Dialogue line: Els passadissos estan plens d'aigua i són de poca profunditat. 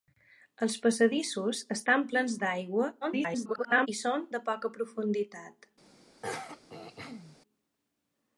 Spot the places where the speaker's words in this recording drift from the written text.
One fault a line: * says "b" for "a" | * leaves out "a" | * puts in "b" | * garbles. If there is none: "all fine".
* garbles